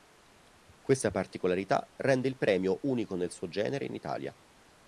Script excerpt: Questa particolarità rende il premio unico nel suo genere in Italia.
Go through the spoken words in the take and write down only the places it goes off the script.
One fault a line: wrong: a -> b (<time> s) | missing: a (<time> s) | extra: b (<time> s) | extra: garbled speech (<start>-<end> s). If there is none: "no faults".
no faults